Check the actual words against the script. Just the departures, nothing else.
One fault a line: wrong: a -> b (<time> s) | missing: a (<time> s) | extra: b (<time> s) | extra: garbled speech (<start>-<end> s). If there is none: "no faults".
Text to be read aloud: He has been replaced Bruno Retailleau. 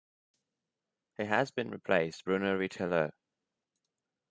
no faults